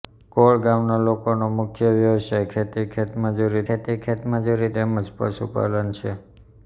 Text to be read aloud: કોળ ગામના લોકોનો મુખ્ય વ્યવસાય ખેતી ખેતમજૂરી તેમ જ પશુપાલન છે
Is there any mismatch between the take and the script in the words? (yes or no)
yes